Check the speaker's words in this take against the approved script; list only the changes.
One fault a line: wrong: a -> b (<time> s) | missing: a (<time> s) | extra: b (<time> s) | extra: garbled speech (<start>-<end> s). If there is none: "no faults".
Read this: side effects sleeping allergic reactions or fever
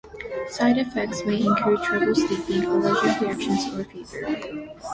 extra: may include trouble (1.3 s)